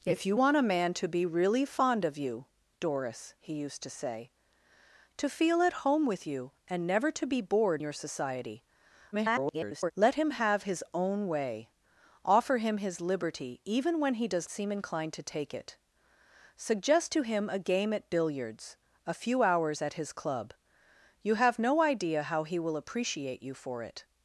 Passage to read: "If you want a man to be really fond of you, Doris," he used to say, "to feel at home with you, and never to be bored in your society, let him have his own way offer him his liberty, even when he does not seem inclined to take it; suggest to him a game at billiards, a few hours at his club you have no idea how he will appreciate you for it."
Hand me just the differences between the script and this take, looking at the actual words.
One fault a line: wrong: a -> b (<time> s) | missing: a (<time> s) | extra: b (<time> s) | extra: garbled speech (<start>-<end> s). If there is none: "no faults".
missing: in (7.8 s)
extra: garbled speech (9.1-9.9 s)
missing: not (14.5 s)